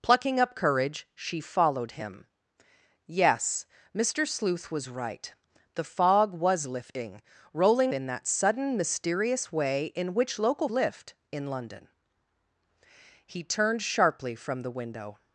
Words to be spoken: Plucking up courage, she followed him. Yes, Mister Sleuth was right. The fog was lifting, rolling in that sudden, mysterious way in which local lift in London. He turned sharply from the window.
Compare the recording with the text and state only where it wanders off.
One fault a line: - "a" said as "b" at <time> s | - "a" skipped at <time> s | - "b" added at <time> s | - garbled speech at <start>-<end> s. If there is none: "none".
none